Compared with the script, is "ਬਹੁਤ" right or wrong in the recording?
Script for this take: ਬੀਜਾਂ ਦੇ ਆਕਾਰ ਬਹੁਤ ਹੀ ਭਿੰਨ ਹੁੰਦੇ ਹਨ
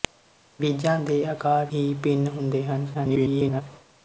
wrong